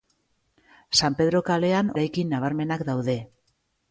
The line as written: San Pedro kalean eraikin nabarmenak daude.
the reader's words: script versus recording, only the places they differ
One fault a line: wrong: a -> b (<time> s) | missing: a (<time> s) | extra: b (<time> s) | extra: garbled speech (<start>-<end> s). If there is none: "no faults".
no faults